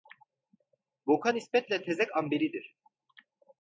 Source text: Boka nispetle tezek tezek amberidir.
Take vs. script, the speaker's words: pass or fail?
fail